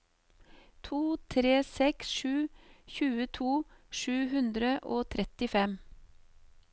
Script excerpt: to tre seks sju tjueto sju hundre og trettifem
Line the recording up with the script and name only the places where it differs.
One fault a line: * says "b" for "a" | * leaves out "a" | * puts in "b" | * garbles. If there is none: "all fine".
all fine